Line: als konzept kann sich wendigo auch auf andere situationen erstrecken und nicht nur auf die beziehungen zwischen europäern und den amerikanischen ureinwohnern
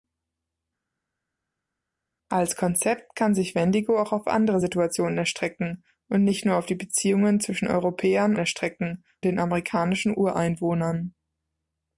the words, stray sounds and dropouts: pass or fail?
fail